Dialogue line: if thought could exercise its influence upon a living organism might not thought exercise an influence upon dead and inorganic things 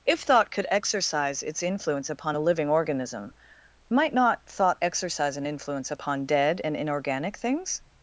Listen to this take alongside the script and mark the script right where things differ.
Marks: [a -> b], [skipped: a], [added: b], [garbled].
if thought could exercise its influence upon a living organism might not thought exercise an influence upon dead and inorganic things